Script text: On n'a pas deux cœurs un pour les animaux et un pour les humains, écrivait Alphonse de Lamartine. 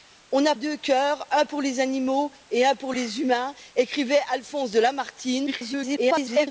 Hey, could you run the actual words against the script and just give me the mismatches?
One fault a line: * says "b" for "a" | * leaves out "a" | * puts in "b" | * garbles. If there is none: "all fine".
* leaves out "pas"
* garbles